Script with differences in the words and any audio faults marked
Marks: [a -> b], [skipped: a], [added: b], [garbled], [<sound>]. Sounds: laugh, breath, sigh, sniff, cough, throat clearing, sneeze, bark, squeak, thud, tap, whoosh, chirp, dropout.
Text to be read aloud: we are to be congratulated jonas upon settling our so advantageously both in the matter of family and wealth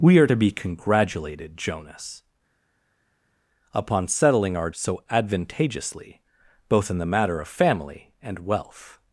we are to be congratulated jonas upon settling our so advantageously both in the matter of family and wealth